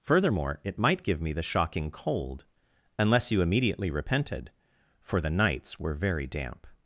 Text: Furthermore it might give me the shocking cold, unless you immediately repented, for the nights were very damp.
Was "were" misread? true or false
false